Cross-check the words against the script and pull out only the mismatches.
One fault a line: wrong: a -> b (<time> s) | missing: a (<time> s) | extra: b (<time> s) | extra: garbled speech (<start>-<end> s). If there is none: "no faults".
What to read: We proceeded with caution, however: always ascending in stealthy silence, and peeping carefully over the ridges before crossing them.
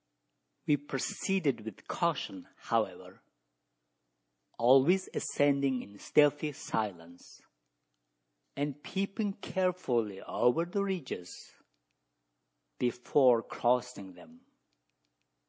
no faults